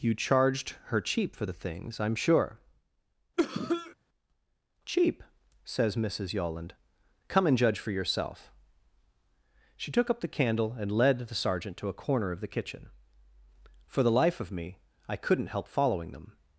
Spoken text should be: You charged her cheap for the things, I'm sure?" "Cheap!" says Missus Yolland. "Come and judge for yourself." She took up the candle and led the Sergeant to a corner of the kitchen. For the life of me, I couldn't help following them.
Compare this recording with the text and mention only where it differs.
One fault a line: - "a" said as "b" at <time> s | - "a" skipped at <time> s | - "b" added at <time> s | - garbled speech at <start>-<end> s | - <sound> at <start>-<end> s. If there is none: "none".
- cough at 3.4-3.9 s